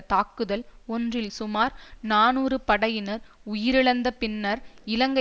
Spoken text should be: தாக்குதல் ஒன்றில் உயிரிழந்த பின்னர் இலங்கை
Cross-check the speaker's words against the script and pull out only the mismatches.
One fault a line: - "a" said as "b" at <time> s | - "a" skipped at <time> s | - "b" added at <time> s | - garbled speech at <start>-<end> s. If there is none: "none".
- "சுமார் நாநூறு படையினர்" added at 1.3 s